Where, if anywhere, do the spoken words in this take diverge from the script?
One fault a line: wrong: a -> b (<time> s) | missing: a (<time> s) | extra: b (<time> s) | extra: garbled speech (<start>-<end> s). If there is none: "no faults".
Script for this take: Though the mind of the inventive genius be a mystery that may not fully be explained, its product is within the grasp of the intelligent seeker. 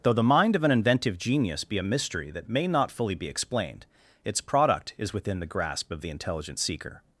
wrong: the -> an (0.6 s)